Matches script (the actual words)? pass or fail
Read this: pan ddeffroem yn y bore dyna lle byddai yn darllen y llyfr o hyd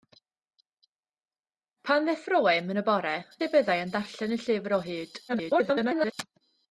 fail